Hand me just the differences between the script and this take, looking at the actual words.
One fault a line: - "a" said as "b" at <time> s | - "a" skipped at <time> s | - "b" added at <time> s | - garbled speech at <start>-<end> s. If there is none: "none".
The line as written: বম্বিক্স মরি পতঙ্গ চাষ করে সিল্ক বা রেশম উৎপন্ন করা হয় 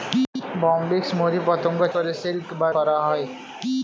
- "চাষ" skipped at 1.8 s
- "রেশম উৎপন্ন" skipped at 2.7 s